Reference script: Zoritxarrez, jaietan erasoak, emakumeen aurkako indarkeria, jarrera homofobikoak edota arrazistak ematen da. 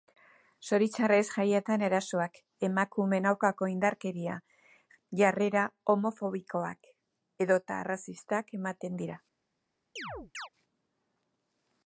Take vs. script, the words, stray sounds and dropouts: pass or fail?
fail